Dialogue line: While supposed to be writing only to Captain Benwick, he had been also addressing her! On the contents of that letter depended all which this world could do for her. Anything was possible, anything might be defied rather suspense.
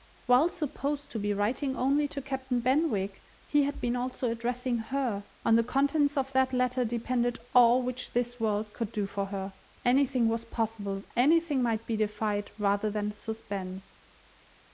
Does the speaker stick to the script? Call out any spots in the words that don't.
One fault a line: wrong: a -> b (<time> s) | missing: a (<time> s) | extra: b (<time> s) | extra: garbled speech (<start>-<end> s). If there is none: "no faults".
extra: than (12.9 s)